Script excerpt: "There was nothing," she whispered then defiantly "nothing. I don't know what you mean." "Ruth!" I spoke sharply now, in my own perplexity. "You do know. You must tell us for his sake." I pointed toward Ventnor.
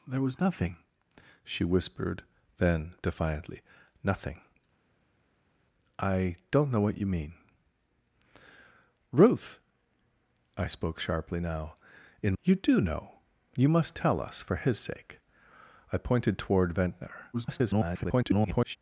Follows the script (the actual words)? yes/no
no